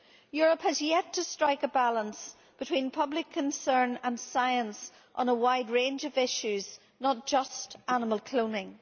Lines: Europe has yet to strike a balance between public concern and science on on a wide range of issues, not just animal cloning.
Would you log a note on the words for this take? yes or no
yes